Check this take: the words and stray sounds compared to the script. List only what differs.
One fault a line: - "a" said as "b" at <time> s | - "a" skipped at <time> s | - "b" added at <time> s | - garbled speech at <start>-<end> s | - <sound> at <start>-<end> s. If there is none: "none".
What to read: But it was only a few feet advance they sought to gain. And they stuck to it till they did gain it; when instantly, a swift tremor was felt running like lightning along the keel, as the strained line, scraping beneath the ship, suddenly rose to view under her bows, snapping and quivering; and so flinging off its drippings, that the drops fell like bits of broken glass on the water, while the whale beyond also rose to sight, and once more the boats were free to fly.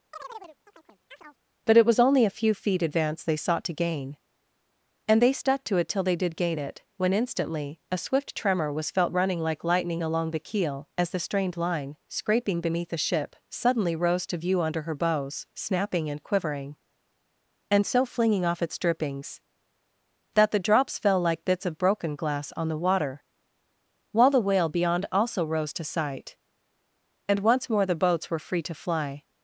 - chirp at 0.1-1.4 s